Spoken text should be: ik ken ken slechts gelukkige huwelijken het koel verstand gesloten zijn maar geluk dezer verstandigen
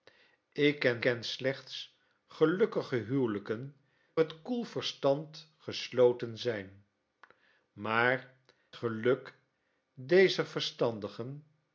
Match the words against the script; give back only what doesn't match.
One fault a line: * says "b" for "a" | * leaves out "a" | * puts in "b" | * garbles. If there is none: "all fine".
all fine